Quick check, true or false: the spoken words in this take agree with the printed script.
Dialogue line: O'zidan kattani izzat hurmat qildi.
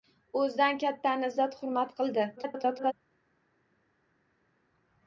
false